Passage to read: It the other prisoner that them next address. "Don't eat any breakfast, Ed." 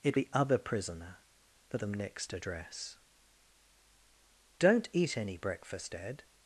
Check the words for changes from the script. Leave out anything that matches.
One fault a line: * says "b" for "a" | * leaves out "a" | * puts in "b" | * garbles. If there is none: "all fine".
all fine